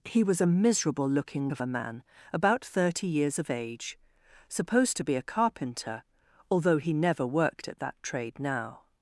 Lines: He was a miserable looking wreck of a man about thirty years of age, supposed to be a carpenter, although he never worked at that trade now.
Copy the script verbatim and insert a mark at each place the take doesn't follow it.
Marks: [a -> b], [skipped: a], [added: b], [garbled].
He was a miserable looking [skipped: wreck] of a man about thirty years of age, supposed to be a carpenter, although he never worked at that trade now.